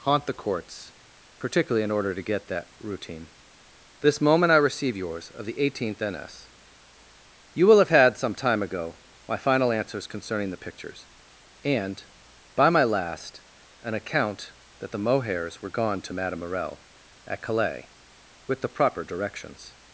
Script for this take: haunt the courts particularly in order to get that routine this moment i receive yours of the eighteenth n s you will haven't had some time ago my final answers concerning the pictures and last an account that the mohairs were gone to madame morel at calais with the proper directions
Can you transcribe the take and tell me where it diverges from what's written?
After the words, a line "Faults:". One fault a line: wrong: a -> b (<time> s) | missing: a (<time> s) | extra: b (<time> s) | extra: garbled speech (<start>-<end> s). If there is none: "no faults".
haunt the courts particularly in order to get that routine this moment i receive yours of the eighteenth n s you will have had some time ago my final answers concerning the pictures and by my last an account that the mohairs were gone to madame morel at calais with the proper directions
Faults:
wrong: haven't -> have (7.8 s)
extra: by my (12.5 s)